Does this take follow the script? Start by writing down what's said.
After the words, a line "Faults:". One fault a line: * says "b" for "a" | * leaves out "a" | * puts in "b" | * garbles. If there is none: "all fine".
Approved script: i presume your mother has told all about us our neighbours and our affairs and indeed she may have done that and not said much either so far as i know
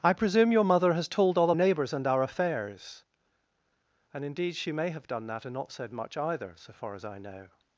i presume your mother has told all neighbours and our affairs and indeed she may have done that and not said much either so far as i know
Faults:
* leaves out "about us our"